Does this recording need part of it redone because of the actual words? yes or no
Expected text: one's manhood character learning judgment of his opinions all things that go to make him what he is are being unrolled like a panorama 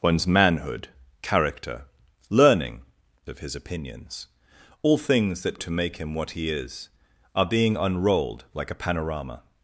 yes